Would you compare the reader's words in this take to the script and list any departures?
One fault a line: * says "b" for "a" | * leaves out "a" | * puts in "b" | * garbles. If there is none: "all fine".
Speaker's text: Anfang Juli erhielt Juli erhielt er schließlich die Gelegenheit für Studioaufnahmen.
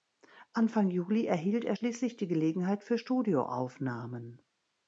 * leaves out "Juli erhielt"